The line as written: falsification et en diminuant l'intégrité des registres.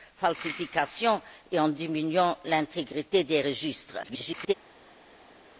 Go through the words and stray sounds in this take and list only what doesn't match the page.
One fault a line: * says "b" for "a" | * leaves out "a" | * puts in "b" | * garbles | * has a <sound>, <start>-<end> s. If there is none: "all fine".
* garbles